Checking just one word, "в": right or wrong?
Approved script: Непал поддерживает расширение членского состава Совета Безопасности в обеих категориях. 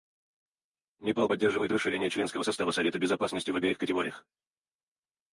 right